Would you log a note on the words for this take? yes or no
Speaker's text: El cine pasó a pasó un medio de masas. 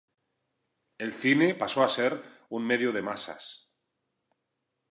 yes